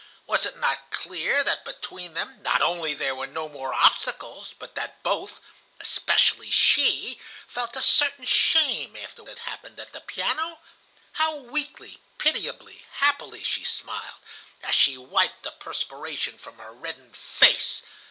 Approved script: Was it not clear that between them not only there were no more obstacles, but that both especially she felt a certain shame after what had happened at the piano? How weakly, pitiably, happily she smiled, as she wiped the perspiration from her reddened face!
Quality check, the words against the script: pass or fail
fail